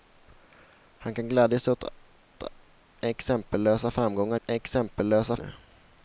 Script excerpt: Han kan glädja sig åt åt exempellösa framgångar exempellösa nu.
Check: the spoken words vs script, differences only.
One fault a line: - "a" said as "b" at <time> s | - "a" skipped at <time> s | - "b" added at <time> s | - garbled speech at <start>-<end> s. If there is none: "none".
none